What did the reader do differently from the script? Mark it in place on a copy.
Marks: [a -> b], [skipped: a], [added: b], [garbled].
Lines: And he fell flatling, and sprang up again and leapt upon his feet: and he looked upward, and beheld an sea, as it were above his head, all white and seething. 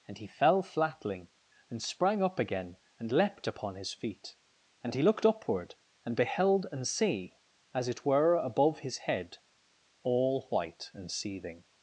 And he fell flatling, and sprang up again and leapt upon his feet: and he looked upward, and beheld an sea, as it were above his head, all white and seething.